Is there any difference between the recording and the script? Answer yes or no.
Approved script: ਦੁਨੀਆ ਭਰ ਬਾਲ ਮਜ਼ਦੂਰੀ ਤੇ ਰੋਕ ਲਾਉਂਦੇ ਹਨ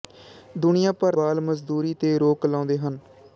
no